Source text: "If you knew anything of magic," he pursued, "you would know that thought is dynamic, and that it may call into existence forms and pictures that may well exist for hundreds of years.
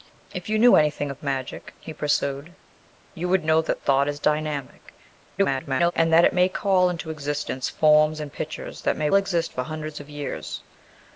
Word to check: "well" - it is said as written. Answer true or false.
false